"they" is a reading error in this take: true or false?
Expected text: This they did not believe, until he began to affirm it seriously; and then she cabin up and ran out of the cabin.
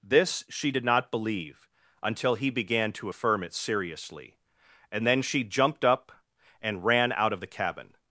true